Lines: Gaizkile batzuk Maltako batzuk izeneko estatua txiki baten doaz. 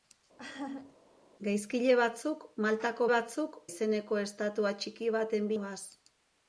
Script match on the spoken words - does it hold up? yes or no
yes